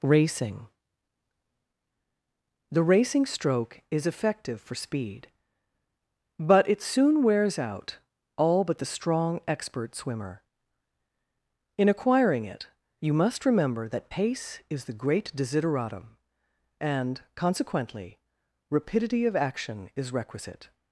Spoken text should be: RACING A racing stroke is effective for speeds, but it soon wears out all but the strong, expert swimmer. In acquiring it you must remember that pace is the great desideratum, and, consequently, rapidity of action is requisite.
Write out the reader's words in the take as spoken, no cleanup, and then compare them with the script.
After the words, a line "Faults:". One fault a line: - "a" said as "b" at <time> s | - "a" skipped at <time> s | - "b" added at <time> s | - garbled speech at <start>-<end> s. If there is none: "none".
RACING The racing stroke is effective for speed, but it soon wears out all but the strong, expert swimmer. In acquiring it you must remember that pace is the great desideratum, and, consequently, rapidity of action is requisite.
Faults:
- "A" said as "The" at 2.7 s
- "speeds" said as "speed" at 4.7 s